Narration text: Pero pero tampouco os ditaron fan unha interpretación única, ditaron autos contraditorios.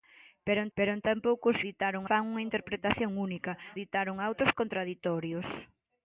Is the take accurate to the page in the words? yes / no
yes